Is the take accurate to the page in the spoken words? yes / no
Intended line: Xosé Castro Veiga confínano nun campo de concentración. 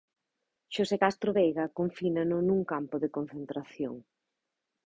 yes